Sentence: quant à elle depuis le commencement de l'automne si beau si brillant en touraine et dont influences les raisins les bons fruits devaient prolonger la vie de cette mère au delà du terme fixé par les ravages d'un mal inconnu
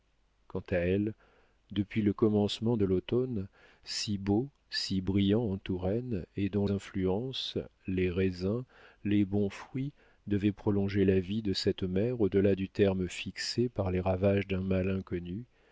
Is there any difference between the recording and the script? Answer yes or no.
no